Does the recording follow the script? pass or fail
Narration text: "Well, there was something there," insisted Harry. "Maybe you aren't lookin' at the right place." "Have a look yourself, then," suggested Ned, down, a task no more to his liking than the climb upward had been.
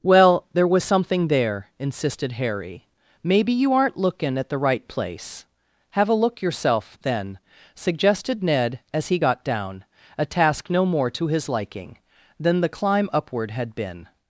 fail